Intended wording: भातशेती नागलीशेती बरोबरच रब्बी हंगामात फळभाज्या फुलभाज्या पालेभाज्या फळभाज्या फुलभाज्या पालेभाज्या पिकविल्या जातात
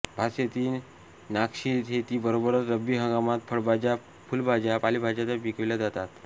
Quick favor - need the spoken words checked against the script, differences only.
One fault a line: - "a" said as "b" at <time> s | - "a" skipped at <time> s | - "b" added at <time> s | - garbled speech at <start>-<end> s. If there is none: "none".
- "फळभाज्या फुलभाज्या पालेभाज्या" skipped at 5.4 s